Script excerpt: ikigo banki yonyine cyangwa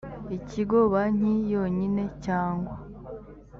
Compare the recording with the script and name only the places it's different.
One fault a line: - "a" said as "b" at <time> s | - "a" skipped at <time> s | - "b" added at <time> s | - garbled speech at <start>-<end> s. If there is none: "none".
none